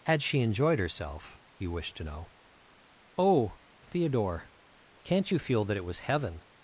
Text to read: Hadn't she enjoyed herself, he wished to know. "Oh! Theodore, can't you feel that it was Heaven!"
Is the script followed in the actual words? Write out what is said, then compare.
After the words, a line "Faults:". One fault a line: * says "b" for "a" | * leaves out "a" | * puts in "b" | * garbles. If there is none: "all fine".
Had she enjoyed herself, he wished to know. "Oh! Theodore, can't you feel that it was Heaven!"
Faults:
* says "Had" for "Hadn't"